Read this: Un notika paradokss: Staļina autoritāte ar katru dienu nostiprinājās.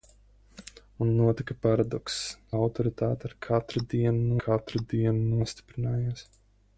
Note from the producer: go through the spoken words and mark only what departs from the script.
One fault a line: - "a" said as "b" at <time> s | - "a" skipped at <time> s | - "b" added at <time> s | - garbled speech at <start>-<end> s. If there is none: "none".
- "Staļina" skipped at 2.2 s
- "katru dienu" added at 4.5 s